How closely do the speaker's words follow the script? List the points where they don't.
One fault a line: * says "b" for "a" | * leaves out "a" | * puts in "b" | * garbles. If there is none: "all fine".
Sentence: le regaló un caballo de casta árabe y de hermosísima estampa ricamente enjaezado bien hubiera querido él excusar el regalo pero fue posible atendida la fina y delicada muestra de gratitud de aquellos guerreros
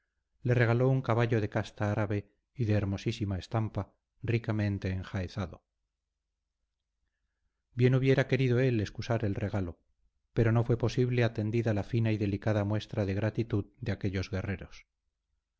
* puts in "no"